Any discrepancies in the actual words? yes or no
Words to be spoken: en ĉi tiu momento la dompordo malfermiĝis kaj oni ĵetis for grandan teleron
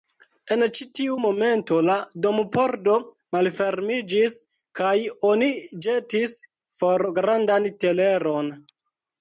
no